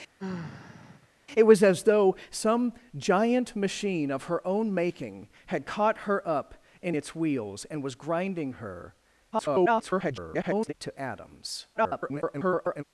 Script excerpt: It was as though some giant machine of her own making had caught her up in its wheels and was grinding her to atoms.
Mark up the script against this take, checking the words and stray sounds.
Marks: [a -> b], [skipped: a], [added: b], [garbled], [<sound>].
[sigh] It was as though some giant machine of her own making had caught her up in its wheels and was grinding her [garbled] to atoms. [garbled]